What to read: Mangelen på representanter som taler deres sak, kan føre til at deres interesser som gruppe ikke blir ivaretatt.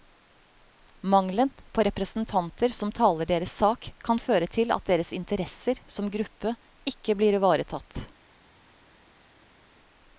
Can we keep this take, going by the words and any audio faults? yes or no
yes